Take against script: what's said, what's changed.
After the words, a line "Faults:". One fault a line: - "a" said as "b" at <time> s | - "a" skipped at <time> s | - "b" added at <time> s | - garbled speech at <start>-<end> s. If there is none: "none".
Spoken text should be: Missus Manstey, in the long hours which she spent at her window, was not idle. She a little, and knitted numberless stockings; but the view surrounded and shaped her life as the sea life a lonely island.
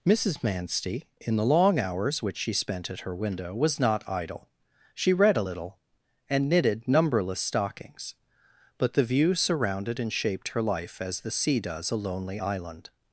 Missus Manstey, in the long hours which she spent at her window, was not idle. She read a little, and knitted numberless stockings; but the view surrounded and shaped her life as the sea does a lonely island.
Faults:
- "read" added at 5.1 s
- "life" said as "does" at 11.6 s